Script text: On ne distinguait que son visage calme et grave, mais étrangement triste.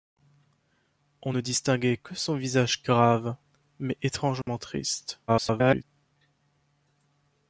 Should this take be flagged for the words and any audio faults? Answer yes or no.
yes